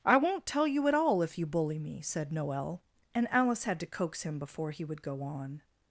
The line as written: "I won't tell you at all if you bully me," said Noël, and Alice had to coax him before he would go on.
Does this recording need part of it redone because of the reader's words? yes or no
no